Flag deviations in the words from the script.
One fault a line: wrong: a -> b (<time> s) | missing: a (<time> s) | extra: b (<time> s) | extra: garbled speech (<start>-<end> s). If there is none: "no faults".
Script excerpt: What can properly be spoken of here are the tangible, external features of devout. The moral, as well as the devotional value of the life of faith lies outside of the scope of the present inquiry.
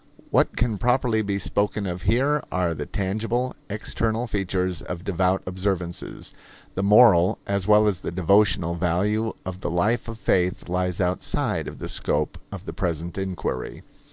extra: observances (5.4 s)